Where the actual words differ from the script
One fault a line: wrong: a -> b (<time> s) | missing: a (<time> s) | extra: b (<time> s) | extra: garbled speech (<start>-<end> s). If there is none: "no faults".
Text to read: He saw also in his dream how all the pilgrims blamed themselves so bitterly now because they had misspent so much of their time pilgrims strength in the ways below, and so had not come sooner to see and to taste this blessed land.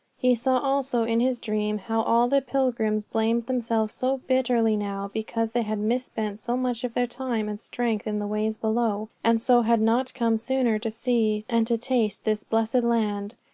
wrong: pilgrims -> and (7.5 s)